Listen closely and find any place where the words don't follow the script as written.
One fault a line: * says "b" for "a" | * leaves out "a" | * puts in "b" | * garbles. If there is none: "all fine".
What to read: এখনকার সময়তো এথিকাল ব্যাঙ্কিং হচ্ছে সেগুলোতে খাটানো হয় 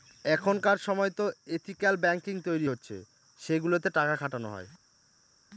* puts in "তৈরী"
* puts in "টাকা"